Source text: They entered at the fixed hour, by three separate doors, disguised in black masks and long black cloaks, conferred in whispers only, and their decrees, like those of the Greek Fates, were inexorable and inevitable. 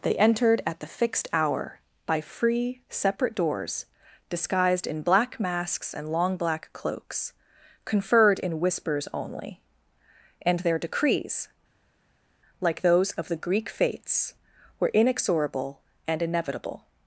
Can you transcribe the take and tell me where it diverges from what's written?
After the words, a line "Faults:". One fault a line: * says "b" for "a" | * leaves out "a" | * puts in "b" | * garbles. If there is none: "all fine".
They entered at the fixed hour, by free separate doors, disguised in black masks and long black cloaks, conferred in whispers only, and their decrees, like those of the Greek Fates, were inexorable and inevitable.
Faults:
* says "free" for "three"